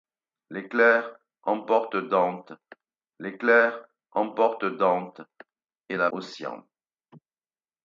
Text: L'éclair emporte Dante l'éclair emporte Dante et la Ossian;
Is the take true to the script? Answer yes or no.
yes